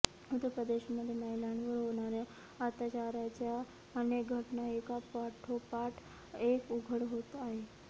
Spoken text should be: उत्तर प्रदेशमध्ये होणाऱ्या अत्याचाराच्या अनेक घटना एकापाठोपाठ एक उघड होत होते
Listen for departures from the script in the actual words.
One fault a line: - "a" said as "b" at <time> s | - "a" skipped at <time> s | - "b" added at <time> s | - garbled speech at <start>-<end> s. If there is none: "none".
- "महिलांवर" added at 1.1 s
- "होते" said as "आहेत" at 7.4 s